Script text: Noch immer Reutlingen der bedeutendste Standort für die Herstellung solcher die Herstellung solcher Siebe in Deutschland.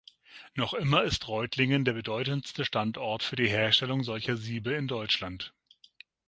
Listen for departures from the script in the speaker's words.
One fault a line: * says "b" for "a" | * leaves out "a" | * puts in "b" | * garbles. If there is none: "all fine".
* puts in "ist"
* leaves out "die Herstellung solcher"